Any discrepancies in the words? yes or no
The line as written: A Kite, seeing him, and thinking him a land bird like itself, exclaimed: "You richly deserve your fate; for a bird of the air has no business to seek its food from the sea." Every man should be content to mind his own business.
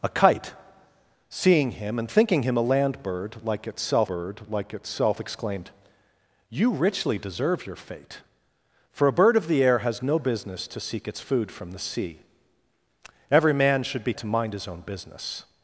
yes